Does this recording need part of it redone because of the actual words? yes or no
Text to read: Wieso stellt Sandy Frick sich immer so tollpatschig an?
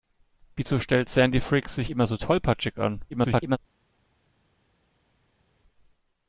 yes